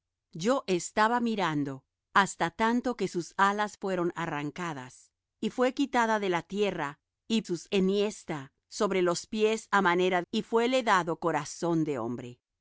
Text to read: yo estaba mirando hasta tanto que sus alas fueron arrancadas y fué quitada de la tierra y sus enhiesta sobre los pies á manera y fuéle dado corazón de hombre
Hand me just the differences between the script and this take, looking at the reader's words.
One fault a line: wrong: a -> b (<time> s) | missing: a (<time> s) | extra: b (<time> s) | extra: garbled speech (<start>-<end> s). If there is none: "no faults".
no faults